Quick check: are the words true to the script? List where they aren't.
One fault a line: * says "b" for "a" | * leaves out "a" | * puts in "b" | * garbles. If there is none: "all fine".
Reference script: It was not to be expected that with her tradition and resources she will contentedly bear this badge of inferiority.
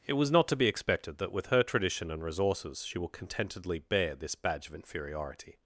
all fine